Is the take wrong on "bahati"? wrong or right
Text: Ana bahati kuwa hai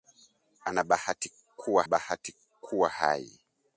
right